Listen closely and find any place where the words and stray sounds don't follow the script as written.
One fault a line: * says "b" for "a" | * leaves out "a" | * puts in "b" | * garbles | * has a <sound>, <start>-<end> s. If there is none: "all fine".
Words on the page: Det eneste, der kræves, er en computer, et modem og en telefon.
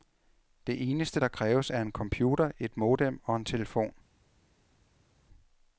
all fine